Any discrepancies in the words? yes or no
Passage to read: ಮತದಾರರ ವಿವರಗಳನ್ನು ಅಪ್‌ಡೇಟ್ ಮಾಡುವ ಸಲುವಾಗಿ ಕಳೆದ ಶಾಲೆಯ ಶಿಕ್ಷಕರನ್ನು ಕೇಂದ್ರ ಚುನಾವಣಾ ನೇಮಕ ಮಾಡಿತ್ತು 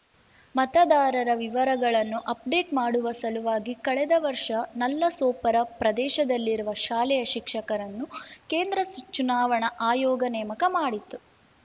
yes